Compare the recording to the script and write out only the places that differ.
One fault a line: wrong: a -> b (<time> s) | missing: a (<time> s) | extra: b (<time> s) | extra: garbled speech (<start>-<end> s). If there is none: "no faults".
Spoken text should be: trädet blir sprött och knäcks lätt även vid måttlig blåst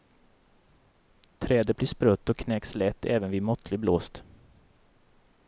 no faults